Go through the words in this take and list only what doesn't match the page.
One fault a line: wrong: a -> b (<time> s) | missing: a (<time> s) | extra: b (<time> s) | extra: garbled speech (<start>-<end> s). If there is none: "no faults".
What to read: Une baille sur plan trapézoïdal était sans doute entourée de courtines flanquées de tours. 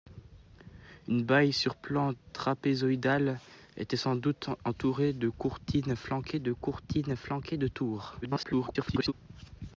extra: courtines flanquées de (6.5 s)
extra: garbled speech (8.2-9.1 s)